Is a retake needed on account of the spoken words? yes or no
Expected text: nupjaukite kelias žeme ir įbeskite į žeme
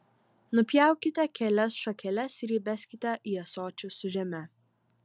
yes